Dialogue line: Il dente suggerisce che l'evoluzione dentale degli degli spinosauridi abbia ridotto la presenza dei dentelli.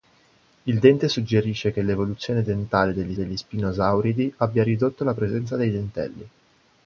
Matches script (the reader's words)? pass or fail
pass